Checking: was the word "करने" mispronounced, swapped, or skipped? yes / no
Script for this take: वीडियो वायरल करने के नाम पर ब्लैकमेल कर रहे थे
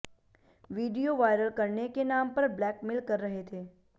no